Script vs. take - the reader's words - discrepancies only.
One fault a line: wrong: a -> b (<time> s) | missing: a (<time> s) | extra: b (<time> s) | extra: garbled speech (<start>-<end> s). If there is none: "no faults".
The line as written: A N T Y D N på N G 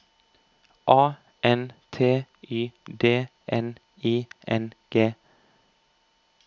wrong: på -> I (4.0 s)